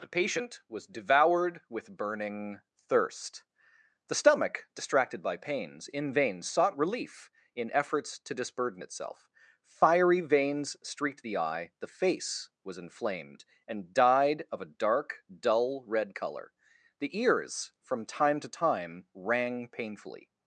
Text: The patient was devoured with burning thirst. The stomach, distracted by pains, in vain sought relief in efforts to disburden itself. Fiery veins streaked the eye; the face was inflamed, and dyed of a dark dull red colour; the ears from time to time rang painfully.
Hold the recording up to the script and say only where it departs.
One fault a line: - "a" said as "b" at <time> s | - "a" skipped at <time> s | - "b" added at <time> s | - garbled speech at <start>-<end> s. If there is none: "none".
none